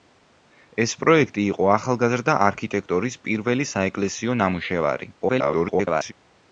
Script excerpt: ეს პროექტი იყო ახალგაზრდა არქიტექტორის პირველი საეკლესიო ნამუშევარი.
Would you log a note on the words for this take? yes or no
yes